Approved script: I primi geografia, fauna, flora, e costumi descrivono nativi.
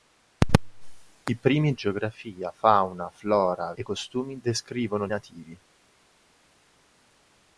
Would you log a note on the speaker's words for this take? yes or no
no